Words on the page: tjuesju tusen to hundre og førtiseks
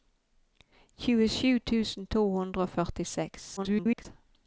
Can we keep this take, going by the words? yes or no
no